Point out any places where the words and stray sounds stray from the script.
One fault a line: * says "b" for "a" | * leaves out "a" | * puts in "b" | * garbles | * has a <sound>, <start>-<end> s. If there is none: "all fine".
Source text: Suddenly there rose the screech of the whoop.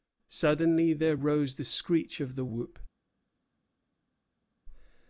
all fine